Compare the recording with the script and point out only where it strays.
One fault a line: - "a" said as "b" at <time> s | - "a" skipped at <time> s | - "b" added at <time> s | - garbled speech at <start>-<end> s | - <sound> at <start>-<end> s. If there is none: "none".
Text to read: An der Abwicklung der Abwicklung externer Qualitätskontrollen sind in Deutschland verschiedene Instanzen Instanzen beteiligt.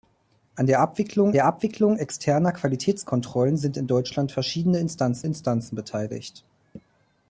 none